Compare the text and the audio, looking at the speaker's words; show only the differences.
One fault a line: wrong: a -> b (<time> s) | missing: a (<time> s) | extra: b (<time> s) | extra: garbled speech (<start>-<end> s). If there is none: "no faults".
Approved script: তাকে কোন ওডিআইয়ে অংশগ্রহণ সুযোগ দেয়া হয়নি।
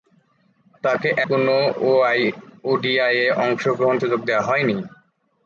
no faults